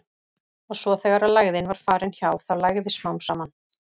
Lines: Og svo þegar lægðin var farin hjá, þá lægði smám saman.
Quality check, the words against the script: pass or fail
pass